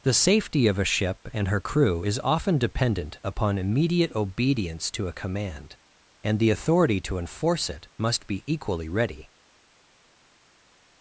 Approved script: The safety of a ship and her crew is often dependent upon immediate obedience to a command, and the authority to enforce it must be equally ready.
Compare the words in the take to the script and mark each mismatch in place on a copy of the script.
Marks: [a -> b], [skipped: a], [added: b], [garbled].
The safety of a ship and her crew is often dependent upon immediate obedience to a command, and the authority to enforce it must be equally ready.